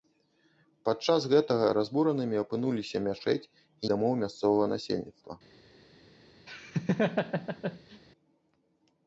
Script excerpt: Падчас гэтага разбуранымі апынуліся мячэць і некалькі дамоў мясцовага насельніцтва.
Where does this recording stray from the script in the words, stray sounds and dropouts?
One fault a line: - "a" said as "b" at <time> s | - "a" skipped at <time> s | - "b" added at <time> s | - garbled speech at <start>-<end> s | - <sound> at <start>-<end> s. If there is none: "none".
- "некалькі" skipped at 3.9 s
- laugh at 6.5-8.0 s